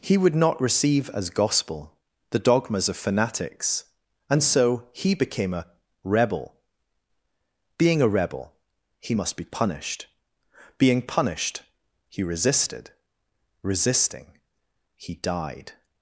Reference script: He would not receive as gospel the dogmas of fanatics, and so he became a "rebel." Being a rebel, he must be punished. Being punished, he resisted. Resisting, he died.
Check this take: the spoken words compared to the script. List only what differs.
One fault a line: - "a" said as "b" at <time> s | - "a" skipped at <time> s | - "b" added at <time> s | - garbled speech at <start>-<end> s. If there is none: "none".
none